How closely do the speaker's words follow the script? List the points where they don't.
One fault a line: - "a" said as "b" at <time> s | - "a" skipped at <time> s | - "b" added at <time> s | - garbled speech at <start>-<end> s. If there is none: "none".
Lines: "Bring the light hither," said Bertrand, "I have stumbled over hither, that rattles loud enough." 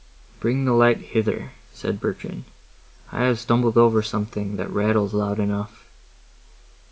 - "hither" said as "something" at 4.0 s